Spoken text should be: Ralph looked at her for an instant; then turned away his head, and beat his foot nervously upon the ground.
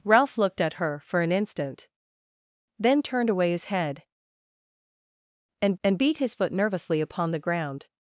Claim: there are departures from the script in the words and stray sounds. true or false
true